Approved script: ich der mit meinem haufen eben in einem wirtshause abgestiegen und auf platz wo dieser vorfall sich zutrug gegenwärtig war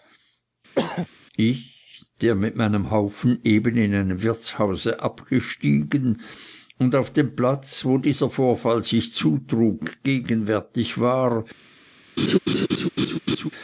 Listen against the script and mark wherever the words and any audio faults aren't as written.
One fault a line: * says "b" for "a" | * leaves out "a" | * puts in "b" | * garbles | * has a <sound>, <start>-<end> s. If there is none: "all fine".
* has a throat clearing, 0.7-1.1 s
* puts in "dem"
* has a laugh, 12.2-13.5 s